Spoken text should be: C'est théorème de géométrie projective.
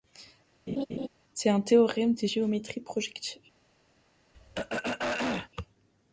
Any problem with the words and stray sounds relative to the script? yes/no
yes